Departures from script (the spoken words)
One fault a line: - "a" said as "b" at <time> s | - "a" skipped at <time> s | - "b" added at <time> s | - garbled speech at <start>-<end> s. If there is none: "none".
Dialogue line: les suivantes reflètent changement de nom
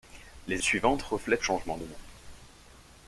none